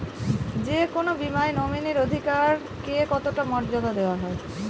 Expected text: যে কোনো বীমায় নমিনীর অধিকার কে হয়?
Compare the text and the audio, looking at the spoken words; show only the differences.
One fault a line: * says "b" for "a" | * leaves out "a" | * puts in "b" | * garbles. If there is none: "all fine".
* puts in "কতটা মর্যাদা দেওয়া"